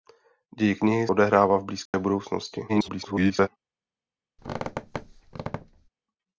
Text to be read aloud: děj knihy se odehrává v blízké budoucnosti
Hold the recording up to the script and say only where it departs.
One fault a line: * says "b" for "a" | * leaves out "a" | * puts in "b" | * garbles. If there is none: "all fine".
* leaves out "se"
* garbles